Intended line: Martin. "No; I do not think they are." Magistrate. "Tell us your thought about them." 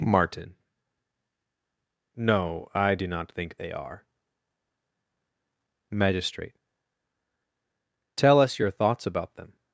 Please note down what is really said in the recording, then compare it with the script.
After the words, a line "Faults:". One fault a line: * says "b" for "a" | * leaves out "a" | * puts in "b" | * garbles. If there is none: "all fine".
Martin. "No; I do not think they are." Magistrate. "Tell us your thoughts about them."
Faults:
* says "thoughts" for "thought"